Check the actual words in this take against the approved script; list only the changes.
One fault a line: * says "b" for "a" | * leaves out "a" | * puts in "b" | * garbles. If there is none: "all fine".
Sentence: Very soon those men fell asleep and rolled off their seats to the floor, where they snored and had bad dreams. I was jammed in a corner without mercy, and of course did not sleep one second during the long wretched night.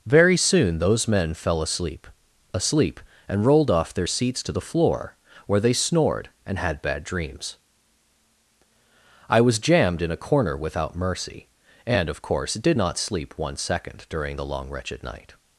* puts in "asleep"